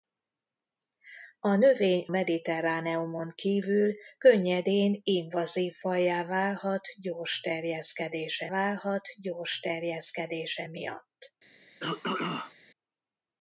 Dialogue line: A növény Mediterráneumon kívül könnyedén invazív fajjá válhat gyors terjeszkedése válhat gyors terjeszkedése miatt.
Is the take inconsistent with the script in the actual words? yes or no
no